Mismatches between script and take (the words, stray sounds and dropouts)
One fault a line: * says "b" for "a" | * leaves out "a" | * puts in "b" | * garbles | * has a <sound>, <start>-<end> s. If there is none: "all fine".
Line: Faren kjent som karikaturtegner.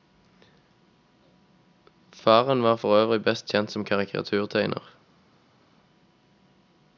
* puts in "var forøvrig best"